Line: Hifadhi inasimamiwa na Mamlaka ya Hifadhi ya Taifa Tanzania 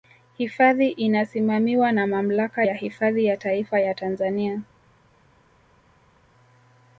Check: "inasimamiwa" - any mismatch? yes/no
no